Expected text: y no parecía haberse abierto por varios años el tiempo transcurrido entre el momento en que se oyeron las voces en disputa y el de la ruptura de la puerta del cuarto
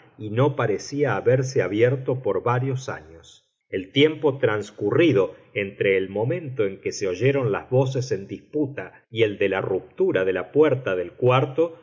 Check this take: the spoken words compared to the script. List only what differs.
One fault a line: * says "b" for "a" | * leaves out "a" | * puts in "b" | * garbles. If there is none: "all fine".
all fine